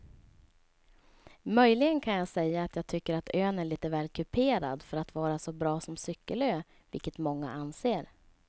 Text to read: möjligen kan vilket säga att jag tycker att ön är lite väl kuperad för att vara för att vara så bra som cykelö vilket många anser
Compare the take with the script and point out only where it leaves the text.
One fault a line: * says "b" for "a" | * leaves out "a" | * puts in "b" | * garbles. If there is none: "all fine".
* says "jag" for "vilket"
* leaves out "för att vara"